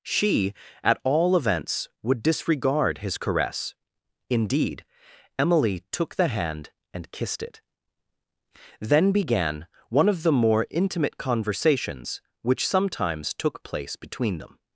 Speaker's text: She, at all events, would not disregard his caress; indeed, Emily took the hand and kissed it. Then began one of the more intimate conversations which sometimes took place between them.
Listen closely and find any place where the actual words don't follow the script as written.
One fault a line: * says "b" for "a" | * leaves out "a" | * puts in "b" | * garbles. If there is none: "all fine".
* leaves out "not"